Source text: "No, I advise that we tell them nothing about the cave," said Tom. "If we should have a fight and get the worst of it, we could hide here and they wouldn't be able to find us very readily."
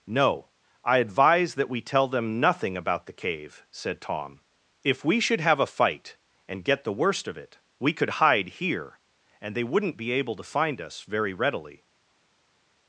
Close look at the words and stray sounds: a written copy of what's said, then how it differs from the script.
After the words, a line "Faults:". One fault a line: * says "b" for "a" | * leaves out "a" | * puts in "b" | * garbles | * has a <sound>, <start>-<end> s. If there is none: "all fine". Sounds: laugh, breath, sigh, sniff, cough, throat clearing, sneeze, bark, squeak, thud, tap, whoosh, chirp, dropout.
"No, I advise that we tell them nothing about the cave," said Tom. "If we should have a fight and get the worst of it, we could hide here and they wouldn't be able to find us very readily."
Faults:
all fine